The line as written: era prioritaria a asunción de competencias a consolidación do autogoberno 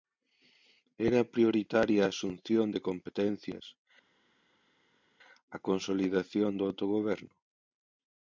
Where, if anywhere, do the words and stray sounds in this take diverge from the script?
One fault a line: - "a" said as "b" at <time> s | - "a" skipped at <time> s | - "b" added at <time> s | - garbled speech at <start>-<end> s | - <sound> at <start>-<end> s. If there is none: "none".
none